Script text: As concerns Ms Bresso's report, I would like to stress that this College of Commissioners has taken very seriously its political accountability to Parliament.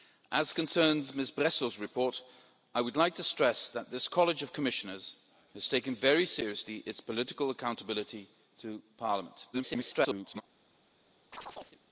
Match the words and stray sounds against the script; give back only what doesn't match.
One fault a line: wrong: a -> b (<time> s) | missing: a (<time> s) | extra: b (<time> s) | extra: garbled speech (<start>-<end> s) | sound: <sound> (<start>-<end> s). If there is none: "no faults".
extra: garbled speech (9.5-10.4 s)
sound: chirp (11.3-11.8 s)